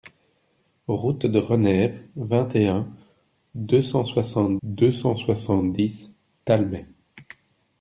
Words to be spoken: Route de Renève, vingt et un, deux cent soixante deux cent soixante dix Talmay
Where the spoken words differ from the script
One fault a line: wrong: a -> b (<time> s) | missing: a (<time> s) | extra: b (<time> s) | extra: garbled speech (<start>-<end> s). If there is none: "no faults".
no faults